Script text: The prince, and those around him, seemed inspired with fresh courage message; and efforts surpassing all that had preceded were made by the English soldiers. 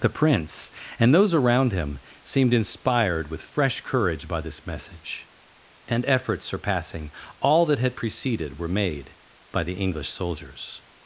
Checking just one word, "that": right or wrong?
right